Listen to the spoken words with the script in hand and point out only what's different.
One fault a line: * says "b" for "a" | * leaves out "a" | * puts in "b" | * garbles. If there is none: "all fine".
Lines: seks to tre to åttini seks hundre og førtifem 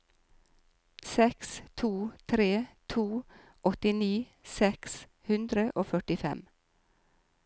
all fine